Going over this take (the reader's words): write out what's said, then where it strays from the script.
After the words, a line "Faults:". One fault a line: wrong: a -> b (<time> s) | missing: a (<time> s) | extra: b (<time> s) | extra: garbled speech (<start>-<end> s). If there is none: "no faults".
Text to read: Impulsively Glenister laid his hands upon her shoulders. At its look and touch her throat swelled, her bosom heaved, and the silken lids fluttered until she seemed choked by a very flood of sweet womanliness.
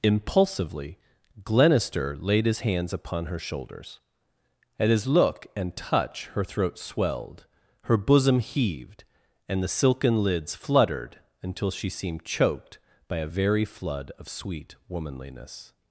Impulsively Glenister laid his hands upon her shoulders. At his look and touch her throat swelled, her bosom heaved, and the silken lids fluttered until she seemed choked by a very flood of sweet womanliness.
Faults:
wrong: its -> his (4.9 s)